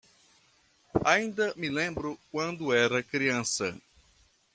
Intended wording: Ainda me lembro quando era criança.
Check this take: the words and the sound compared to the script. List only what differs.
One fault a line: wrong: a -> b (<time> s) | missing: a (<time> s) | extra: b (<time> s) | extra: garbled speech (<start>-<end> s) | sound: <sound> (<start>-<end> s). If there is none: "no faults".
no faults